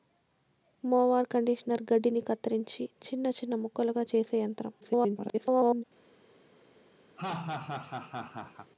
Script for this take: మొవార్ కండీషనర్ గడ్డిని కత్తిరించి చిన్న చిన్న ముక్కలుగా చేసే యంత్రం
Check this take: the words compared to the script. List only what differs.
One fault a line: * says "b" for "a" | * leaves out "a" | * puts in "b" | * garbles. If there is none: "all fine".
* garbles